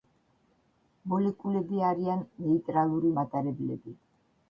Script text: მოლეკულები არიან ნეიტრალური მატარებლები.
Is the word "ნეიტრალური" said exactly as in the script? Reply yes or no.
yes